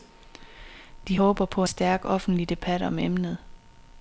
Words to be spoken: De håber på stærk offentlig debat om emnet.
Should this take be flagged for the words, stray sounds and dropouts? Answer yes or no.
no